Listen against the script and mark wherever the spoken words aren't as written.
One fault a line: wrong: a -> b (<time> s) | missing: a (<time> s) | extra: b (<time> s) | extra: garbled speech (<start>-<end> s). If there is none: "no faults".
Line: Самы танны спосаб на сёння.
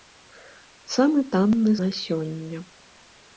missing: спосаб (1.7 s)